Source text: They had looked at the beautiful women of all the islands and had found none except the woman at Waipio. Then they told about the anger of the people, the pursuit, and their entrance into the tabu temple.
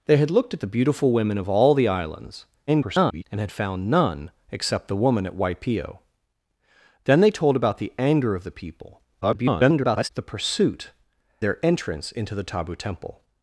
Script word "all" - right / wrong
right